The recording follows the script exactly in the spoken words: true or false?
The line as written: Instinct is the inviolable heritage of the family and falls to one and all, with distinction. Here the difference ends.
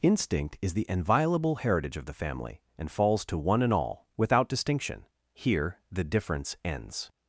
false